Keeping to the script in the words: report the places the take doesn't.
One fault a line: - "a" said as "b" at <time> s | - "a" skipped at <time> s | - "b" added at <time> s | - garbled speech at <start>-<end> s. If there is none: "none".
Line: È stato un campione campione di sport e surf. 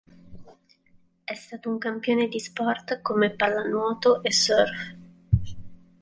- "campione" skipped at 2.3 s
- "come pallanuoto" added at 3.0 s